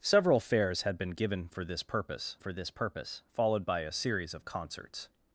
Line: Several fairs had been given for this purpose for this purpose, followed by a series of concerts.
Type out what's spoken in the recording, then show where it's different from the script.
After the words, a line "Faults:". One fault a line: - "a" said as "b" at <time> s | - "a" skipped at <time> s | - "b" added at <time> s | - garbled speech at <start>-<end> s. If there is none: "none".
Several fairs had been given for this purpose for this purpose, followed by a series of concerts.
Faults:
none